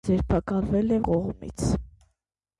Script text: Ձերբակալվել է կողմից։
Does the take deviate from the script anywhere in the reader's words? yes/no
no